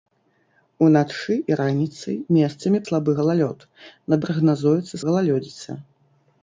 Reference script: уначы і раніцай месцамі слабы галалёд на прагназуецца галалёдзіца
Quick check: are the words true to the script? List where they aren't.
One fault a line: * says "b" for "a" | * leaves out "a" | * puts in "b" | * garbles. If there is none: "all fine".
all fine